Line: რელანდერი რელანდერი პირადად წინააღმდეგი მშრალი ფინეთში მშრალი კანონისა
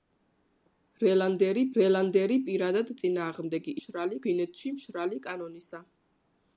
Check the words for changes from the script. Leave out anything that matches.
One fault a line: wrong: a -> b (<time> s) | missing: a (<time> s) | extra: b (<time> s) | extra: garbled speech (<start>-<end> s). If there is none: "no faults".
no faults